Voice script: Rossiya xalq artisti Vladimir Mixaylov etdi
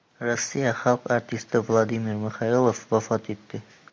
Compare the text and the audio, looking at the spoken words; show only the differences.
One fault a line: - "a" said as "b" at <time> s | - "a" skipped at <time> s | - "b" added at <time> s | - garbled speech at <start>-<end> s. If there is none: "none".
- "vafot" added at 3.0 s